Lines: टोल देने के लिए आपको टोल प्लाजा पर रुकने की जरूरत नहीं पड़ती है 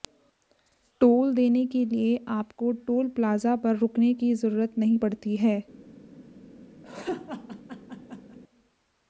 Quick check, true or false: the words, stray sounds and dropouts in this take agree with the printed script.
false